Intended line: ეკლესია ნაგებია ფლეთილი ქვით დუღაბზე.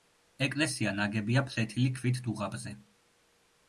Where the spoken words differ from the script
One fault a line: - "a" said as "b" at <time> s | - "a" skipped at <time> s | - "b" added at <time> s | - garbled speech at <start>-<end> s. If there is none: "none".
none